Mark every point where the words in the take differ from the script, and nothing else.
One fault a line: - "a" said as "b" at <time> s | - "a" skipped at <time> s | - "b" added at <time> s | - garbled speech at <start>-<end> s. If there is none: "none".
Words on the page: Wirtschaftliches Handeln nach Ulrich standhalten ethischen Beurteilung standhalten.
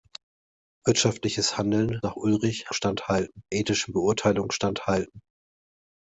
none